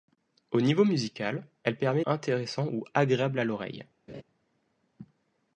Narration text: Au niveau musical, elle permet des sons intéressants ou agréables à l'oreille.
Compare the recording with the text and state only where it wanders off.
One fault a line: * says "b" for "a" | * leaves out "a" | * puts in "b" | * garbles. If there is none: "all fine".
* leaves out "des sons"